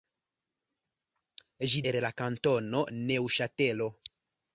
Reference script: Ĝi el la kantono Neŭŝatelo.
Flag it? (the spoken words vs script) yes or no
no